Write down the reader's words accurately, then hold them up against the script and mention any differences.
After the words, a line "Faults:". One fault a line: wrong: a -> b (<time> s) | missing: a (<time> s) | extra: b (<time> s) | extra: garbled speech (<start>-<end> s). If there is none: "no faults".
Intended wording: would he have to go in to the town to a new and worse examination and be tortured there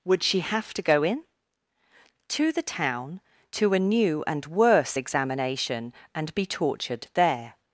would she have to go in to the town to a new and worse examination and be tortured there
Faults:
wrong: he -> she (0.2 s)